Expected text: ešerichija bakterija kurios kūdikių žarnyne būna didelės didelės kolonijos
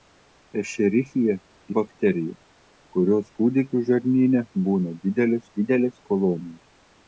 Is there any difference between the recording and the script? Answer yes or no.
no